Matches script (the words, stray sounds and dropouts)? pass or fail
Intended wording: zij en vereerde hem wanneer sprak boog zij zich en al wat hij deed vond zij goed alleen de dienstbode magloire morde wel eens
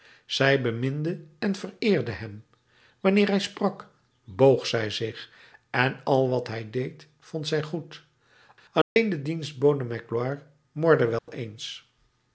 fail